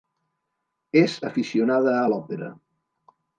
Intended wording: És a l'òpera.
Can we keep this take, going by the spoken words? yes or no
no